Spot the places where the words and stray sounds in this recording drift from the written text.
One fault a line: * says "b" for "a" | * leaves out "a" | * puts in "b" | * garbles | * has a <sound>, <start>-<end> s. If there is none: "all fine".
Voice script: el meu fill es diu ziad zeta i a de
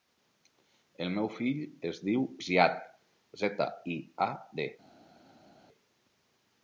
all fine